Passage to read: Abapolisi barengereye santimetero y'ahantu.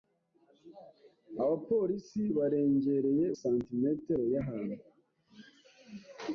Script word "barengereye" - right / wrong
right